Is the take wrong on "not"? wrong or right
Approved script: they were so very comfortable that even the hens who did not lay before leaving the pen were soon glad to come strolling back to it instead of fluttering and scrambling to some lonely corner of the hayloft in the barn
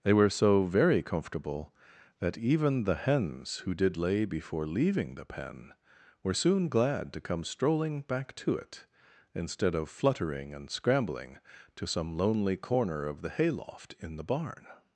wrong